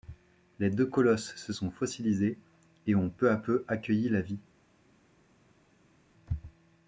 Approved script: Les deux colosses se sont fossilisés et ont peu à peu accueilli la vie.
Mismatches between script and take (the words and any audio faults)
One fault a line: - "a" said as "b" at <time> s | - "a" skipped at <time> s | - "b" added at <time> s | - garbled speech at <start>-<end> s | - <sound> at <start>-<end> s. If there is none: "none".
none